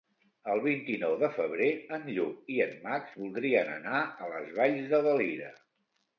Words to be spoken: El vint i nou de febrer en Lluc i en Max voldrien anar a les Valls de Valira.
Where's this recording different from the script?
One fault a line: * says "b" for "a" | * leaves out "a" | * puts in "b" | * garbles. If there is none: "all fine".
all fine